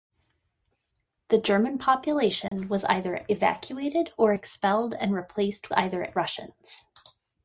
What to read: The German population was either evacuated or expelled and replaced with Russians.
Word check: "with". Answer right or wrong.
wrong